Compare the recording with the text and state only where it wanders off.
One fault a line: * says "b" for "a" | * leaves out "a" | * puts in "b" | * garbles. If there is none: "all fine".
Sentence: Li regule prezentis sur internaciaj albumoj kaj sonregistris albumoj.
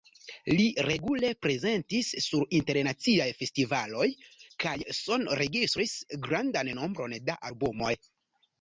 * says "festivaloj" for "albumoj"
* puts in "grandan nombron da"